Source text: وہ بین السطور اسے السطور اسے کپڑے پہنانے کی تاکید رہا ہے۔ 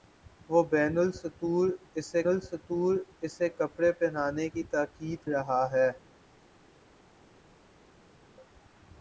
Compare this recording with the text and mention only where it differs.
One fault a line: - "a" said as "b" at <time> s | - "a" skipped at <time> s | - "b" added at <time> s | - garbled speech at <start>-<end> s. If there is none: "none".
none